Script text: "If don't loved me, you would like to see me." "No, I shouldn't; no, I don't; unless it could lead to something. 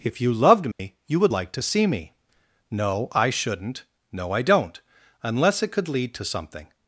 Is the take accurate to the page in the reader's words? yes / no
no